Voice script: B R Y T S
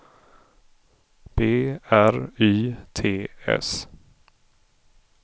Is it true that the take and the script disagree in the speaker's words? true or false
false